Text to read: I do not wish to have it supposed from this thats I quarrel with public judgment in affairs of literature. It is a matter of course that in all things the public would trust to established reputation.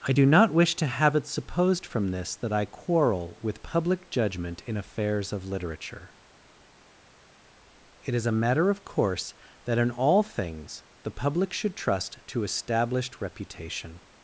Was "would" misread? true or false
true